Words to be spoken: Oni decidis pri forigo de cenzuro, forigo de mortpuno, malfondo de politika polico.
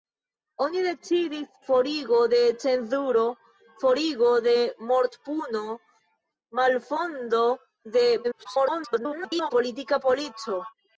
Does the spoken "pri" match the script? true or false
false